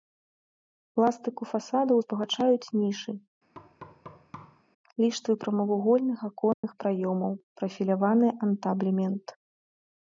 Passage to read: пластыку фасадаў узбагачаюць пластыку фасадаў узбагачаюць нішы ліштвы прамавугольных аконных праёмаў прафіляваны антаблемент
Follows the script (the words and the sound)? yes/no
no